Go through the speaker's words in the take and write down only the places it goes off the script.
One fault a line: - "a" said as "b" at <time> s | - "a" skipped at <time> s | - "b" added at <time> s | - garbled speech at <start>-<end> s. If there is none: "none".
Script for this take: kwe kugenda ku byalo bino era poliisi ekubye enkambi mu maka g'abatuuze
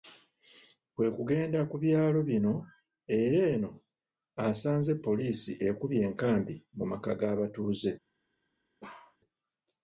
- "eno asanze" added at 3.5 s